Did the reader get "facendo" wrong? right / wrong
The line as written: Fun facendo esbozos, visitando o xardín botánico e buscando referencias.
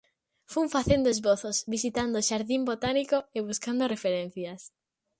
right